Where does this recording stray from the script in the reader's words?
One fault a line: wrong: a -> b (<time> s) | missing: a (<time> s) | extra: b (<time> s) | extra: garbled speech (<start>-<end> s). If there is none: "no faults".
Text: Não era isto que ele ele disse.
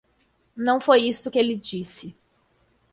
wrong: era -> foi (0.8 s)
missing: ele (1.5 s)